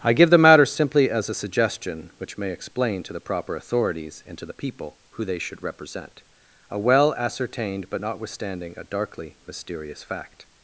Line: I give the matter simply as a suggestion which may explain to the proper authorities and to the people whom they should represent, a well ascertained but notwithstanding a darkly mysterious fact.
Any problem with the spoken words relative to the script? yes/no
yes